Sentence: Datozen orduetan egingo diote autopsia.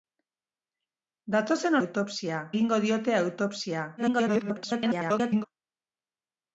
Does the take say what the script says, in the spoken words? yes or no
no